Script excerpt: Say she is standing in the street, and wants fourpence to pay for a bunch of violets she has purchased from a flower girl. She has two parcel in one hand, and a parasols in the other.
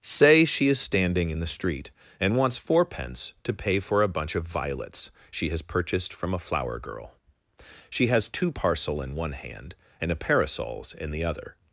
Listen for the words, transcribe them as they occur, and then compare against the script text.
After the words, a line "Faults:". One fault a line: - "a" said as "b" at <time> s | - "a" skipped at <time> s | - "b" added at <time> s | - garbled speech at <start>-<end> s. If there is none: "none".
Say she is standing in the street, and wants fourpence to pay for a bunch of violets she has purchased from a flower girl. She has two parcel in one hand, and a parasols in the other.
Faults:
none